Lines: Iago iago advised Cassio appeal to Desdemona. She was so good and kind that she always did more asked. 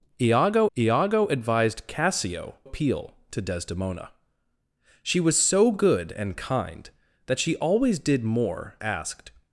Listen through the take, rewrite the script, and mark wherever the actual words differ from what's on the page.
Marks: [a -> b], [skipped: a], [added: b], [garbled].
Iago iago advised Cassio appeal to Desdemona. She was so good and kind that she always did more asked.